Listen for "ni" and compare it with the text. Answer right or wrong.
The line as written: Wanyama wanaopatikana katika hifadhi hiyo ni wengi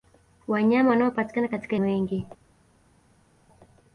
wrong